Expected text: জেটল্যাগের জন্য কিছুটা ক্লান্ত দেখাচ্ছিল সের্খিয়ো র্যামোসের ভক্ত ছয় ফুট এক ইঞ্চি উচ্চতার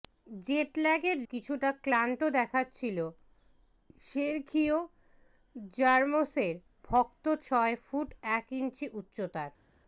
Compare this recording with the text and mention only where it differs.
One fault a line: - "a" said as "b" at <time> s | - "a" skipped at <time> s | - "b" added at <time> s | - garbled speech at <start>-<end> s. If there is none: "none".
- "জন্য" skipped at 1.2 s